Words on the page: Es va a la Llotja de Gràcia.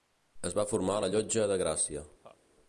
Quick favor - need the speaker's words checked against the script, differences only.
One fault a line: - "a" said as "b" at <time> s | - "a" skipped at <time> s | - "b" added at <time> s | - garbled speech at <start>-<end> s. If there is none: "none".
- "formar" added at 0.7 s